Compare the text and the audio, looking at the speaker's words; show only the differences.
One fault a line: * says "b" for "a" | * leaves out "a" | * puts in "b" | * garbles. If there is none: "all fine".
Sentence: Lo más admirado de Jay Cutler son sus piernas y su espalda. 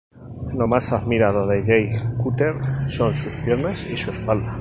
all fine